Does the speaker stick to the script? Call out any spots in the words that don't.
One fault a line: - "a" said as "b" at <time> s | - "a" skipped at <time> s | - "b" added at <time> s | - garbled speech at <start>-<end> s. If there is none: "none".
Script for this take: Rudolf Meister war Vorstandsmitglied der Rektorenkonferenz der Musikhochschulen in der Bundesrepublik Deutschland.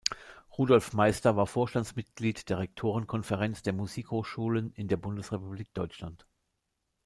none